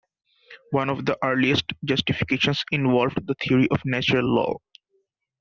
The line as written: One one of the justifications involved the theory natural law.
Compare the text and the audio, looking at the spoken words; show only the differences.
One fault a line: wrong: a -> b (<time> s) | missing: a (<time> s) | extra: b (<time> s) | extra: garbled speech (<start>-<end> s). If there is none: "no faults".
missing: one (0.9 s)
extra: earliest (1.2 s)
extra: of (3.7 s)